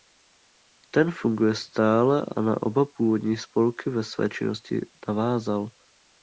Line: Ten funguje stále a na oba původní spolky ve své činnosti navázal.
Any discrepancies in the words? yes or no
no